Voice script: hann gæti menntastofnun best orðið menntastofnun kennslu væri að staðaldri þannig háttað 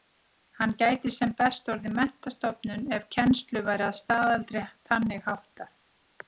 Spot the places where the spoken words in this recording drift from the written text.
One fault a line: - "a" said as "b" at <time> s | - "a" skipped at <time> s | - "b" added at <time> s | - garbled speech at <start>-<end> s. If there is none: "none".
- "menntastofnun" said as "sem" at 1.1 s
- "ef" added at 3.0 s